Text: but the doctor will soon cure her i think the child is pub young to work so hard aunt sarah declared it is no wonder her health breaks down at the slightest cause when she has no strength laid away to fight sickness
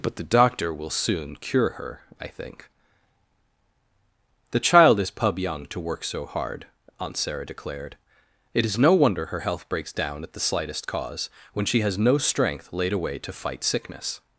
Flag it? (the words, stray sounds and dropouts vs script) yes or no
no